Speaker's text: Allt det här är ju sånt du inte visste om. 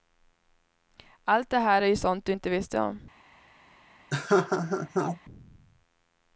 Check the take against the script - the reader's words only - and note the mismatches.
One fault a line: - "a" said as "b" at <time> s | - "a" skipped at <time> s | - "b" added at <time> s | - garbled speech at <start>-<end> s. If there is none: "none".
none